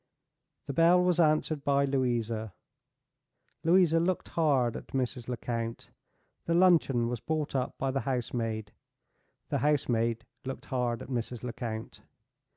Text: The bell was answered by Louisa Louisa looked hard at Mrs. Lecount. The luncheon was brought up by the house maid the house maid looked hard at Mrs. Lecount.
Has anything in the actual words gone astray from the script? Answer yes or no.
no